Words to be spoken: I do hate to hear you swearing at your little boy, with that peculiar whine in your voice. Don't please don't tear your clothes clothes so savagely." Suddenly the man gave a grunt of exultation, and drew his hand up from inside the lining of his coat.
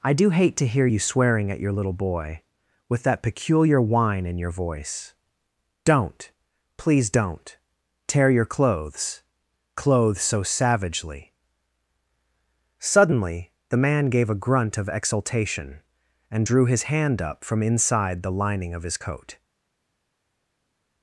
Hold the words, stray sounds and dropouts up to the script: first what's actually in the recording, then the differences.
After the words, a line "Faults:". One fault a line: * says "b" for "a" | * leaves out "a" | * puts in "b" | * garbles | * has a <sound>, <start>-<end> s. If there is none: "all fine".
I do hate to hear you swearing at your little boy, with that peculiar whine in your voice. Don't please don't tear your clothes clothes so savagely." Suddenly the man gave a grunt of exultation, and drew his hand up from inside the lining of his coat.
Faults:
all fine